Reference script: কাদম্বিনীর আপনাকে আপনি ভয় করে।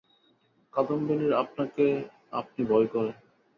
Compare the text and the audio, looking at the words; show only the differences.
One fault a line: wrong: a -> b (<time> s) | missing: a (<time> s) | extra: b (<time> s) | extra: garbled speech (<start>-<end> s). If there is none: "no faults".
no faults